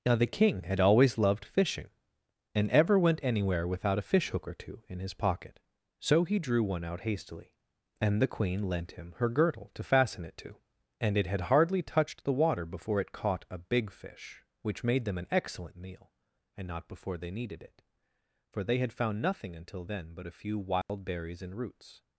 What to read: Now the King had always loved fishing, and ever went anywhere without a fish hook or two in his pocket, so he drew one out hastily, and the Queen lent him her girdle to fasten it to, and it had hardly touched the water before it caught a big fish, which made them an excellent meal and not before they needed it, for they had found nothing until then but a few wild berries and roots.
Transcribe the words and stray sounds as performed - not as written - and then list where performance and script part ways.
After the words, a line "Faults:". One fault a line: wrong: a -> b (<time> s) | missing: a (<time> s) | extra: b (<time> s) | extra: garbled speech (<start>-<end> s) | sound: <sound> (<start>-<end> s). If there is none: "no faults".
Now the King had always loved fishing, and ever went anywhere without a fish hook or two in his pocket, so he drew one out hastily, and the Queen lent him her girdle to fasten it to, and it had hardly touched the water before it caught a big fish, which made them an excellent meal and not before they needed it, for they had found nothing until then but a few wild berries and roots.
Faults:
sound: dropout (20.8-20.9 s)